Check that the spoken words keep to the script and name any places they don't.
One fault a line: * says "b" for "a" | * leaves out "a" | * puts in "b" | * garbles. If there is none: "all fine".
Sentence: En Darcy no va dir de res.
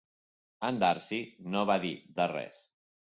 all fine